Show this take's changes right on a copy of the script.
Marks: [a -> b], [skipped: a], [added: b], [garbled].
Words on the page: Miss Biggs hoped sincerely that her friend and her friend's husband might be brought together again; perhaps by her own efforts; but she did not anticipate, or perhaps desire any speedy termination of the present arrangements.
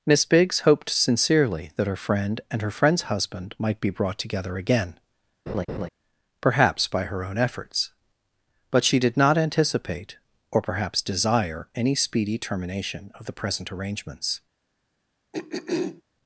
Miss Biggs hoped sincerely that her friend and her friend's husband might be brought together again; perhaps by her own efforts; but she did not anticipate, or perhaps desire any speedy termination of the present arrangements.